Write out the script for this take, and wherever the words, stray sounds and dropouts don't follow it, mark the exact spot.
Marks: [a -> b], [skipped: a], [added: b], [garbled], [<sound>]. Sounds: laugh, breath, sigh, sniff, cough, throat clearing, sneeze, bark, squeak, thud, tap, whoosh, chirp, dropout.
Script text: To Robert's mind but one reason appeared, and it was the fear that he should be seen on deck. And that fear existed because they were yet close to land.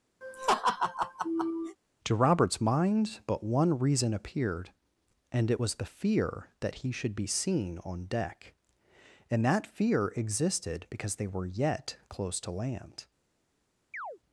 [laugh] To Robert's mind but one reason appeared, and it was the fear that he should be seen on deck. And that fear existed because they were yet close to land. [chirp]